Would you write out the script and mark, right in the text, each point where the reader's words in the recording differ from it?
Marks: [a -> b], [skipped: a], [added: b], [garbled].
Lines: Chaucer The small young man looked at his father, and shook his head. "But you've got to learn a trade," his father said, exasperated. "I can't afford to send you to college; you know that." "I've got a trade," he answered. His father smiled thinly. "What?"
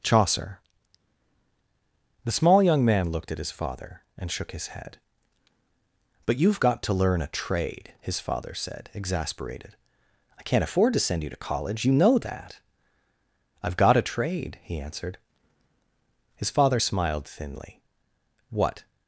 Chaucer The small young man looked at his father, and shook his head. "But you've got to learn a trade," his father said, exasperated. "I can't afford to send you to college; you know that." "I've got a trade," he answered. His father smiled thinly. "What?"